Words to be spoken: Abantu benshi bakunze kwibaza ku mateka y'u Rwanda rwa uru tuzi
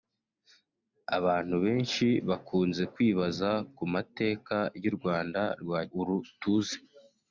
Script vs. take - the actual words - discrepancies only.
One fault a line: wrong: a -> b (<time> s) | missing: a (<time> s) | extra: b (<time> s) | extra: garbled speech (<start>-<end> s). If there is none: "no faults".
no faults